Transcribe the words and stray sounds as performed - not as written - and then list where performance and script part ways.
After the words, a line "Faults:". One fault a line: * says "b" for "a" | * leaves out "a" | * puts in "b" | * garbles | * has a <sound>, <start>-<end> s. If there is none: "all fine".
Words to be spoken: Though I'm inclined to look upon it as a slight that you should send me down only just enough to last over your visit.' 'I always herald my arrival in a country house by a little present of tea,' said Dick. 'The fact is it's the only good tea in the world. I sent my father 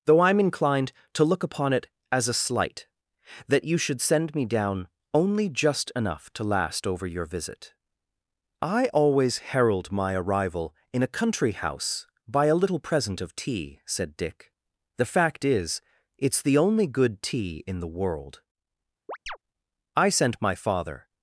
Though I'm inclined to look upon it as a slight that you should send me down only just enough to last over your visit.' 'I always herald my arrival in a country house by a little present of tea,' said Dick. 'The fact is it's the only good tea in the world. I sent my father
Faults:
* has a chirp, 19.1-19.4 s